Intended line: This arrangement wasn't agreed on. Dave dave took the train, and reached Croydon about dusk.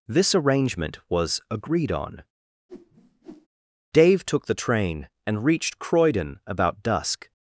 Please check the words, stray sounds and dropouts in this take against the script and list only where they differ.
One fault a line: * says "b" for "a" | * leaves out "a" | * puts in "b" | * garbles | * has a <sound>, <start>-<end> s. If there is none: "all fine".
* says "was" for "wasn't"
* has a whoosh, 2.7-3.5 s
* leaves out "dave"